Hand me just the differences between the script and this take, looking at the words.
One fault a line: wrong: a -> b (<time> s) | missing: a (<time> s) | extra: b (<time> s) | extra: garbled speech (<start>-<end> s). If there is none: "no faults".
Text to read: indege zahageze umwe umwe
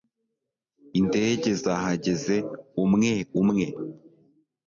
no faults